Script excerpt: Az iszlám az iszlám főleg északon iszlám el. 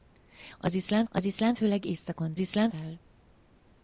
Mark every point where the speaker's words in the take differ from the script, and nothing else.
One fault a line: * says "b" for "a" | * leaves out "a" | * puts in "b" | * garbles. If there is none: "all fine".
all fine